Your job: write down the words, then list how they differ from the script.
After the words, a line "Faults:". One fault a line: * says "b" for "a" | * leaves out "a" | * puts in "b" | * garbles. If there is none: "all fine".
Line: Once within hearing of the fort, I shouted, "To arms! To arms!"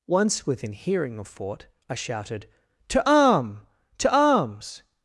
Once within hearing of fort, I shouted, "To arm! To arms!"
Faults:
* leaves out "the"
* says "arm" for "arms"